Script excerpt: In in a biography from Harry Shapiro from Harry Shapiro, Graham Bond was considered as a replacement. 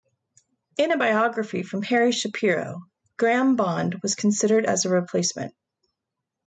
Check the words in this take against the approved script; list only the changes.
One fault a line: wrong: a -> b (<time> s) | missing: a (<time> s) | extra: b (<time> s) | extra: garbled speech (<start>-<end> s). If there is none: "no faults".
missing: in (0.9 s)
missing: from Harry Shapiro (2.8 s)